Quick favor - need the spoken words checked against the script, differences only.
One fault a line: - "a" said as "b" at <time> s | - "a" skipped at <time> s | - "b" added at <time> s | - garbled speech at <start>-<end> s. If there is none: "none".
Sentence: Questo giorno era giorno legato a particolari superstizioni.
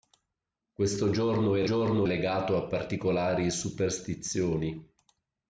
none